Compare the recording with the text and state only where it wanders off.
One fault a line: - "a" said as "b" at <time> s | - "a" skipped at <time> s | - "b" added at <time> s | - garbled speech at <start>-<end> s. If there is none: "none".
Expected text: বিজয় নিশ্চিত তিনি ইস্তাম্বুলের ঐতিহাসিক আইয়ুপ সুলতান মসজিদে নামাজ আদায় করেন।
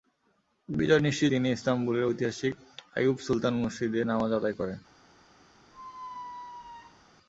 none